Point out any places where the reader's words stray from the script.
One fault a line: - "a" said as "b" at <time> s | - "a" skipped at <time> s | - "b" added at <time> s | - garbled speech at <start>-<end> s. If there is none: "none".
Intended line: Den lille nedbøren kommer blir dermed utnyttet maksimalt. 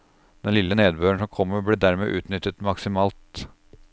- "som" added at 1.2 s